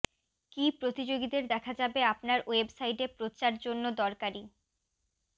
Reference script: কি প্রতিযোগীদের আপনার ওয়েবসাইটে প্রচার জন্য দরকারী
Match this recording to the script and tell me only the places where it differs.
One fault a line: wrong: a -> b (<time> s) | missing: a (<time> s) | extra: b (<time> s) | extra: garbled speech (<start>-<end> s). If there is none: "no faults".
extra: দেখা যাবে (1.5 s)